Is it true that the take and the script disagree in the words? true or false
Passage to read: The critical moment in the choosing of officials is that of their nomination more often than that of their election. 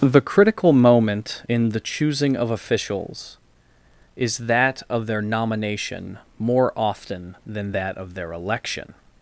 false